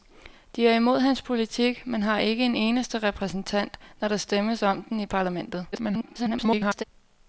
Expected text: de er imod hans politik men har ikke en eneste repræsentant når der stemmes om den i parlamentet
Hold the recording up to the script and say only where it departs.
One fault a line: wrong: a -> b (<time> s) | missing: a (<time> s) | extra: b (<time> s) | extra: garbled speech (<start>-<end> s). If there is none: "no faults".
extra: garbled speech (5.7-6.8 s)